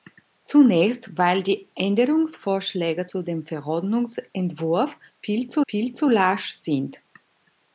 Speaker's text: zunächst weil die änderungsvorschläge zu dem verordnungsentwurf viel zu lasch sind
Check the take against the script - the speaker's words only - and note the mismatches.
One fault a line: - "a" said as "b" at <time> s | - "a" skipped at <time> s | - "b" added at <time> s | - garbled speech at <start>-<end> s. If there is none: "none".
- "viel zu" added at 5.7 s